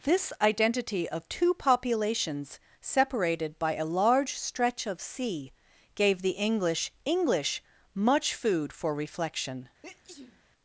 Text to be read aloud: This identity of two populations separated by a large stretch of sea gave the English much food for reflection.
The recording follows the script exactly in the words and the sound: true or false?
false